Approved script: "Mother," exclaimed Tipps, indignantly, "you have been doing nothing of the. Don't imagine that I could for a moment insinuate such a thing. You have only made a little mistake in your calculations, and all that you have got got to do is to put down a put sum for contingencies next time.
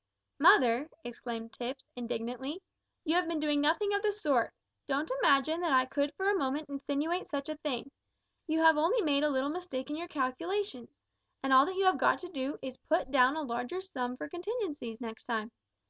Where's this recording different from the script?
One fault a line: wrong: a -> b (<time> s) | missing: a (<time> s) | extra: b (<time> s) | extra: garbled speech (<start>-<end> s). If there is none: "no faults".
extra: sort (4.1 s)
missing: got (12.2 s)
wrong: put -> larger (13.4 s)